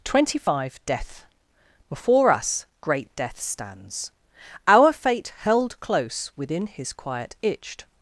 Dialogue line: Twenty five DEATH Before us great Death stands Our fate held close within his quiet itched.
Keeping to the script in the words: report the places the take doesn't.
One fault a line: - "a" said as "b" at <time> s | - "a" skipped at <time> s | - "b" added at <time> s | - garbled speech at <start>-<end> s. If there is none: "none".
none